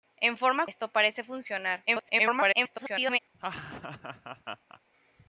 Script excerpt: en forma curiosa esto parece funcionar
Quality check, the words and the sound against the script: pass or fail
fail